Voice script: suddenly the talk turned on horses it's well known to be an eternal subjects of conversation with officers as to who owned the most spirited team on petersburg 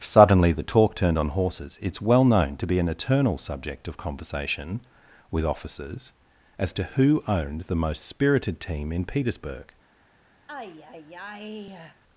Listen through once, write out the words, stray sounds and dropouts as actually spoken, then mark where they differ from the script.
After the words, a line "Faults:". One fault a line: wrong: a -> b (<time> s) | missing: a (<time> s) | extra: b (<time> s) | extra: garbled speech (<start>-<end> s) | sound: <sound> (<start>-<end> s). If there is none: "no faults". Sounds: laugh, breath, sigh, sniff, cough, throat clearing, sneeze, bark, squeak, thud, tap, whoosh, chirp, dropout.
suddenly the talk turned on horses it's well known to be an eternal subject of conversation with officers as to who owned the most spirited team in petersburg
Faults:
wrong: subjects -> subject (3.4 s)
wrong: on -> in (8.9 s)
sound: sigh (10.5-12.0 s)